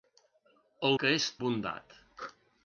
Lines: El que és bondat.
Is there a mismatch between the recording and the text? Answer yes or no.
no